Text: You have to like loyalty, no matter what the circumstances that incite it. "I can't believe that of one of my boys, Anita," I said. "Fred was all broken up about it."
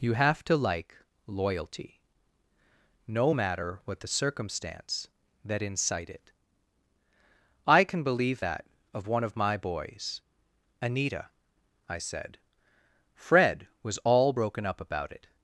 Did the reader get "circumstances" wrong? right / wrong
wrong